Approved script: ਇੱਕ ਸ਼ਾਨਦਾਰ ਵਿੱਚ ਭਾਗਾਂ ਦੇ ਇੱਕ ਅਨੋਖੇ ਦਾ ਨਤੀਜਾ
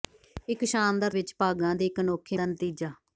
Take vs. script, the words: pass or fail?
pass